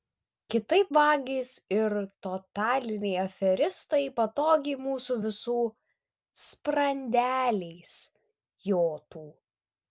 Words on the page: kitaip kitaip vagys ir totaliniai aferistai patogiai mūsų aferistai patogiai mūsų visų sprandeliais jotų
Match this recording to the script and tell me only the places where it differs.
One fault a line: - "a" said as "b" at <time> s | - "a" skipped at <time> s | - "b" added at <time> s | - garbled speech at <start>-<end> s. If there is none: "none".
- "kitaip" skipped at 0.9 s
- "aferistai patogiai mūsų" skipped at 5.2 s